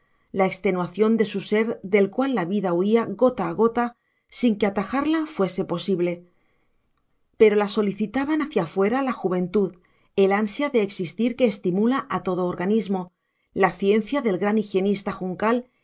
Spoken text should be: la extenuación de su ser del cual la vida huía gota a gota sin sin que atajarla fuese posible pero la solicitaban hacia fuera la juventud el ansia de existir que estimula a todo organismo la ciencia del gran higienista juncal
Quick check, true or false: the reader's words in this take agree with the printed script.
false